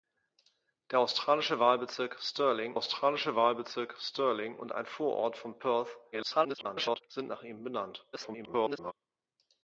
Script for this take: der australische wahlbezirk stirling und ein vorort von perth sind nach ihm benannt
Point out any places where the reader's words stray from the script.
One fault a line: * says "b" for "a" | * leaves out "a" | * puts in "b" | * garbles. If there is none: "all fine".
* puts in "australische wahlbezirk stirling"
* garbles
* garbles